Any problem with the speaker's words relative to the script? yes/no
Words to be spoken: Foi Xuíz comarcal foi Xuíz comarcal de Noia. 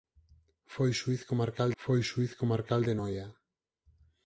no